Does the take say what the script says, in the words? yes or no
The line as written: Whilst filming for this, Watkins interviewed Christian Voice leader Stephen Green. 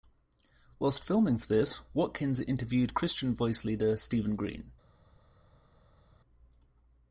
yes